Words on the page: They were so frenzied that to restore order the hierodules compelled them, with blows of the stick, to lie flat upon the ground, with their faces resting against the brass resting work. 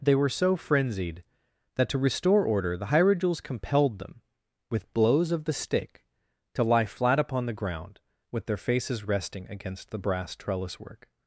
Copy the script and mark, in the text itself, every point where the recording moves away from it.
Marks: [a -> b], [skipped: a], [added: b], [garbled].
They were so frenzied that to restore order the hierodules compelled them, with blows of the stick, to lie flat upon the ground, with their faces resting against the brass [resting -> trellis] work.